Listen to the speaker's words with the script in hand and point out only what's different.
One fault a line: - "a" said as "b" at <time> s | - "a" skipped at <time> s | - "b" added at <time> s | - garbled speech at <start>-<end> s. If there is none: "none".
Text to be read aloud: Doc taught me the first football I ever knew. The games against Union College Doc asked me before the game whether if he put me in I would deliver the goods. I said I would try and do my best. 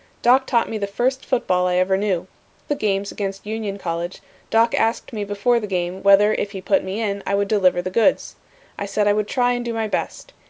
none